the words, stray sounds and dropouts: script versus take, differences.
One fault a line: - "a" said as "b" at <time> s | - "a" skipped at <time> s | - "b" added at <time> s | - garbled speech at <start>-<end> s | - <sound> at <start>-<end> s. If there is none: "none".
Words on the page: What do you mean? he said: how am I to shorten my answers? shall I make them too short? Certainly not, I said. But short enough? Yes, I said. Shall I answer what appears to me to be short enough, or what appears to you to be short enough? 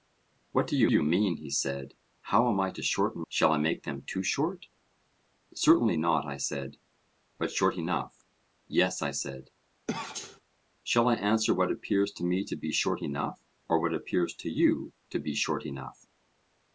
- "you" added at 0.9 s
- "my answers" skipped at 3.2 s
- sneeze at 9.9-10.4 s